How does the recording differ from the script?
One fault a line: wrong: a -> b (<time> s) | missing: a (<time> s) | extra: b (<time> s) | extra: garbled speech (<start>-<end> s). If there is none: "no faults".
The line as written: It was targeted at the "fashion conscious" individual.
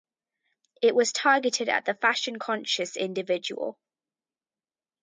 no faults